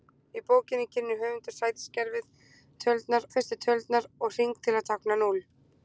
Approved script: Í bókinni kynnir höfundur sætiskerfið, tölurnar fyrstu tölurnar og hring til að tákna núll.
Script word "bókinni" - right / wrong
right